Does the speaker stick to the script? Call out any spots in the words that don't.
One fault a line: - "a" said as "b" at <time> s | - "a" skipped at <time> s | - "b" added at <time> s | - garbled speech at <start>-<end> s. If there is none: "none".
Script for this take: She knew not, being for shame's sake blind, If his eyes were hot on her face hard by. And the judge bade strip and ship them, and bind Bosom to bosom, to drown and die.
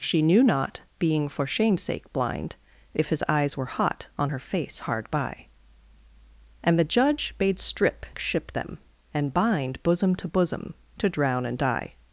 - "and" skipped at 8.1 s